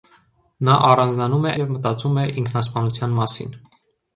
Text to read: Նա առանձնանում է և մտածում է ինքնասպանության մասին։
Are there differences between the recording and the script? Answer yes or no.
no